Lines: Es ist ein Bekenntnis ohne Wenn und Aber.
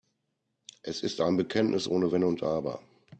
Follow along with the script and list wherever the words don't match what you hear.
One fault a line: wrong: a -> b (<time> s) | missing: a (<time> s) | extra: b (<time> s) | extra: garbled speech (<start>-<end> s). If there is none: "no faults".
no faults